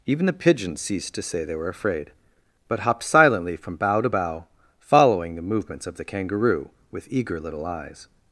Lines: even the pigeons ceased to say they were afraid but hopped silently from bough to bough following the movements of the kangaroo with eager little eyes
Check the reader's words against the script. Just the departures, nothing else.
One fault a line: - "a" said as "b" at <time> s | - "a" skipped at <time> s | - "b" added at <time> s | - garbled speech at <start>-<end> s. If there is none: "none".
none